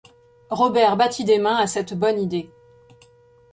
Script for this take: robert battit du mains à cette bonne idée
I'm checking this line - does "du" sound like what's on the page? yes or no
no